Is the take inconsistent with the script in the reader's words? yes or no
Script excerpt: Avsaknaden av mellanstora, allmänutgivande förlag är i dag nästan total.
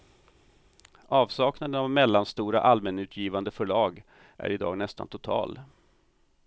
no